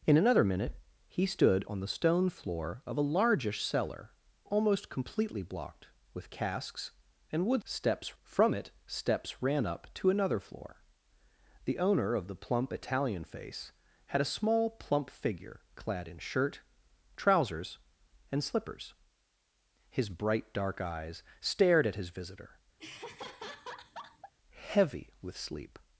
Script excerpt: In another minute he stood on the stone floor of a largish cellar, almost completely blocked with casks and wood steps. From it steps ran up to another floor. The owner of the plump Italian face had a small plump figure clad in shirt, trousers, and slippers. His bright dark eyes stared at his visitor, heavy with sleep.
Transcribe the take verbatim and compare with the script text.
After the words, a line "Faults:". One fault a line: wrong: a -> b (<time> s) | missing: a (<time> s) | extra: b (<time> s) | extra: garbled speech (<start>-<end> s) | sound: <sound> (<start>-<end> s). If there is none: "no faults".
In another minute he stood on the stone floor of a largish cellar, almost completely blocked with casks and wood steps. From it steps ran up to another floor. The owner of the plump Italian face had a small plump figure clad in shirt, trousers, and slippers. His bright dark eyes stared at his visitor, heavy with sleep.
Faults:
sound: laugh (22.8-24.3 s)